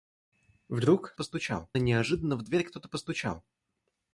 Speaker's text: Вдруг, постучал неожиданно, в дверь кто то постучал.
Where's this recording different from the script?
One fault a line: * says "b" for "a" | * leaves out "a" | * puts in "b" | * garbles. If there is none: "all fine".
all fine